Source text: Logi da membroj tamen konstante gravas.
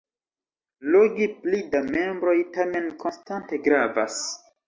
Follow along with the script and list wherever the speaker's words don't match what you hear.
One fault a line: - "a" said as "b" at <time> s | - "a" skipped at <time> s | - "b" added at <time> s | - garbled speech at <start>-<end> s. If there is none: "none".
- "pli" added at 1.4 s